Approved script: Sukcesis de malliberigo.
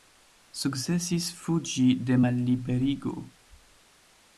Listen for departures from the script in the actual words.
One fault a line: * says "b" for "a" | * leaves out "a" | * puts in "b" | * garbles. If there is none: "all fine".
* puts in "fuĝi"